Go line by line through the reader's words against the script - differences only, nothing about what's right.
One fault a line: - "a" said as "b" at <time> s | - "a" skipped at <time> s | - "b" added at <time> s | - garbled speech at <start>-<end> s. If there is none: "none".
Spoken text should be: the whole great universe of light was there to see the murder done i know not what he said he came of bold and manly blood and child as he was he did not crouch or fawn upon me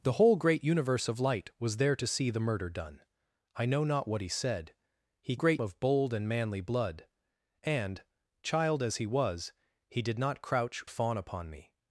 - "came" said as "great" at 5.3 s
- "or" skipped at 10.8 s